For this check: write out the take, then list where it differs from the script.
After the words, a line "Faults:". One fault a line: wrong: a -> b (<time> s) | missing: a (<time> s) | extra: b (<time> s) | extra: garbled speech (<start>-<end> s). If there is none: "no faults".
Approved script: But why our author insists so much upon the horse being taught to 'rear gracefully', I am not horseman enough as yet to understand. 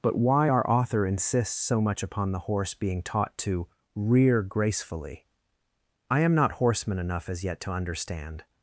But why our author insists so much upon the horse being taught to 'rear gracefully', I am not horseman enough as yet to understand.
Faults:
no faults